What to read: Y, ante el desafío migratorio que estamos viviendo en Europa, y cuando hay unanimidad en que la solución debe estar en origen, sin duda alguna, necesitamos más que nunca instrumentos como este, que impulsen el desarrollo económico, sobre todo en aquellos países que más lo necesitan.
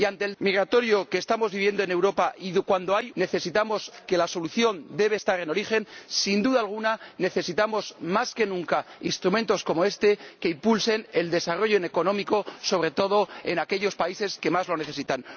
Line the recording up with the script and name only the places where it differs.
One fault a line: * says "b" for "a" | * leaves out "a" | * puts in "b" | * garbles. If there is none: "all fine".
* leaves out "desafío"
* says "necesitamos" for "unanimidad"